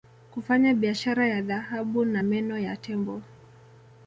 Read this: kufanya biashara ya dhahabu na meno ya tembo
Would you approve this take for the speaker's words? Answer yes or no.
yes